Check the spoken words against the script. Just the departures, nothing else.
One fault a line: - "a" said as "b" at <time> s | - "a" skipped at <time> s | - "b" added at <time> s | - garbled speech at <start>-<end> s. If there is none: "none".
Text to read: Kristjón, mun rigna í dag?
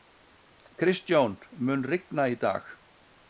none